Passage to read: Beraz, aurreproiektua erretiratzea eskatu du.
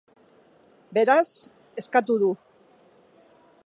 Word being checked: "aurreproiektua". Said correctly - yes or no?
no